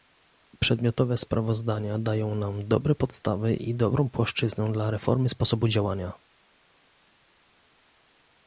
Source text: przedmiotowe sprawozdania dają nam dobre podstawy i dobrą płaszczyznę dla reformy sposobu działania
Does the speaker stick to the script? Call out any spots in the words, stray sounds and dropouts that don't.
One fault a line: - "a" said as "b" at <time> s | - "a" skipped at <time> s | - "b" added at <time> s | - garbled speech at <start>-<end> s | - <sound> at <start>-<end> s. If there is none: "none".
none